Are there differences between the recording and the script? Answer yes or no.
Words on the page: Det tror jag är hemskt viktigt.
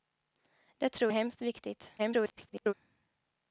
yes